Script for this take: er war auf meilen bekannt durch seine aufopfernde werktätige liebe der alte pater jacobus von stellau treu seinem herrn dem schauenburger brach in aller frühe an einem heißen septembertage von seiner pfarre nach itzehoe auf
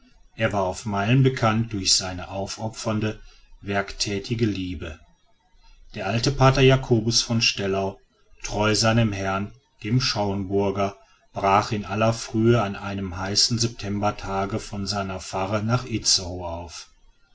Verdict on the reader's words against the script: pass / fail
pass